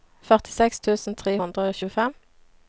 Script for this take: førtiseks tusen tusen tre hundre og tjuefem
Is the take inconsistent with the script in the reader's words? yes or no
yes